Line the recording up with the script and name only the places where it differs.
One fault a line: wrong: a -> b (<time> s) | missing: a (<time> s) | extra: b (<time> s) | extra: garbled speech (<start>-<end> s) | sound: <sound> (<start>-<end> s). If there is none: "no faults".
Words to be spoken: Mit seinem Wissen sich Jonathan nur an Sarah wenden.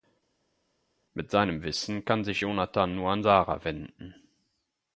extra: kann (2.0 s)